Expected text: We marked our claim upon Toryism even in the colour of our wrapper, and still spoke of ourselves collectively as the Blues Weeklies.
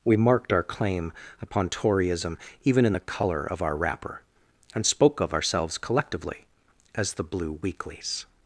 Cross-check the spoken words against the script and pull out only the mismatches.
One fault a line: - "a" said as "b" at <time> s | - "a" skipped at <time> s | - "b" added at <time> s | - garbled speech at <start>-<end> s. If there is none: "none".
- "still" skipped at 4.9 s
- "Blues" said as "Blue" at 7.2 s